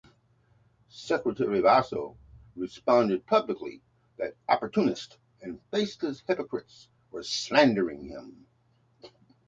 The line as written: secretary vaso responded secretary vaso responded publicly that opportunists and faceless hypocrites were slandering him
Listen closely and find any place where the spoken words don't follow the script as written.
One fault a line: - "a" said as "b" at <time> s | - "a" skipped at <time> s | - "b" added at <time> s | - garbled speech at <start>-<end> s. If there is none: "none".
- "secretary vaso responded" skipped at 3.3 s